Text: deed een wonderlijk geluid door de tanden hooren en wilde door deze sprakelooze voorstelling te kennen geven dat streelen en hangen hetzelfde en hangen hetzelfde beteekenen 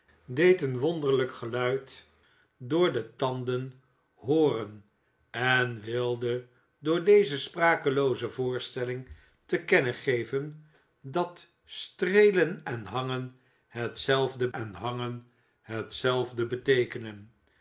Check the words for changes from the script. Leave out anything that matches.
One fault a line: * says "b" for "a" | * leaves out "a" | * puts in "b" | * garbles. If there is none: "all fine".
all fine